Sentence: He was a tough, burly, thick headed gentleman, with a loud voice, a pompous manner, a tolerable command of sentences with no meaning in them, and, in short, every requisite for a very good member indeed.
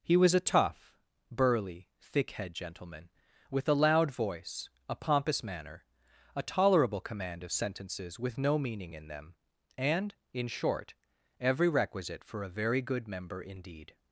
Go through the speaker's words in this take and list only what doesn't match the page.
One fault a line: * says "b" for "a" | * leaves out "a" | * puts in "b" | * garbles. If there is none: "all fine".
* says "head" for "headed"